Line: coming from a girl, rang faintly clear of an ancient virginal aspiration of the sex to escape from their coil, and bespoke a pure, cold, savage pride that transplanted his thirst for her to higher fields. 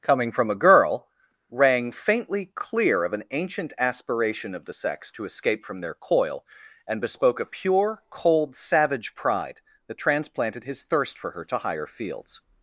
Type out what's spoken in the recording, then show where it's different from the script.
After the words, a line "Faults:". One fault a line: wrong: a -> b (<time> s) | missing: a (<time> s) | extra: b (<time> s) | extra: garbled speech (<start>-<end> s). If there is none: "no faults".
coming from a girl, rang faintly clear of an ancient aspiration of the sex to escape from their coil, and bespoke a pure, cold, savage pride that transplanted his thirst for her to higher fields.
Faults:
missing: virginal (3.7 s)